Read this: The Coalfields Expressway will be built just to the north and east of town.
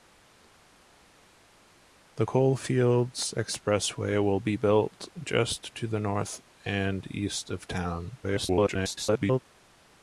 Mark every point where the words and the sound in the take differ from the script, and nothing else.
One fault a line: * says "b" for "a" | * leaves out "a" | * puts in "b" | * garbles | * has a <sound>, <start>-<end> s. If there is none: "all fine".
* garbles